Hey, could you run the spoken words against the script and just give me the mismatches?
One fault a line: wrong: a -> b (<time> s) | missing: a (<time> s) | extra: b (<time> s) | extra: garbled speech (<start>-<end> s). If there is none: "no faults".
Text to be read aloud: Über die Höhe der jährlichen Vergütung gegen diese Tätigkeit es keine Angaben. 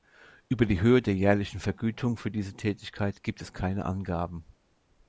wrong: gegen -> für (2.2 s)
extra: gibt (3.2 s)